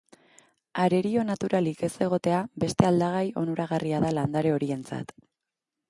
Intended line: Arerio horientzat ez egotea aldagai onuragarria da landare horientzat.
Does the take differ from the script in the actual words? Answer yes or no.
yes